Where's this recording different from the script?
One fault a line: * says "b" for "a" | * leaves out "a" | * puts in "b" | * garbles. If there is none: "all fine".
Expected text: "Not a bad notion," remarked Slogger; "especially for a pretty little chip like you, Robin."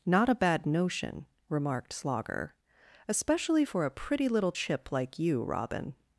all fine